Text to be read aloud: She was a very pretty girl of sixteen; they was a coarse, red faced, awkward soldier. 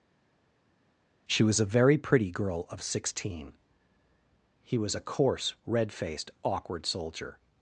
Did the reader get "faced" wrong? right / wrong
right